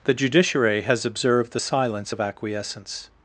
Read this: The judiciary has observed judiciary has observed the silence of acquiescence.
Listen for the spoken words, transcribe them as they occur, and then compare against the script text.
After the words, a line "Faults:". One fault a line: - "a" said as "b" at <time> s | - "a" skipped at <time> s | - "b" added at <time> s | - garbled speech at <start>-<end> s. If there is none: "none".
The judiciary has observed the silence of acquiescence.
Faults:
- "judiciary has observed" skipped at 1.5 s